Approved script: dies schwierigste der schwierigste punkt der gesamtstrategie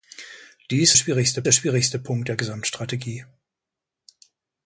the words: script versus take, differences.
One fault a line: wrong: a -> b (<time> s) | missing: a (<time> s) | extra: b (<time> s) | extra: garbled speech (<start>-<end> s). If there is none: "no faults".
no faults